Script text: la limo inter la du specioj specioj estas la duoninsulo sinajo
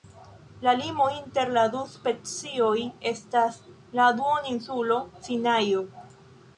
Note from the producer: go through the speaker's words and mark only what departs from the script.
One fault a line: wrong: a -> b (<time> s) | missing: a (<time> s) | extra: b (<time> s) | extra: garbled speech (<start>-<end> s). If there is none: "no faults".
missing: specioj (2.7 s)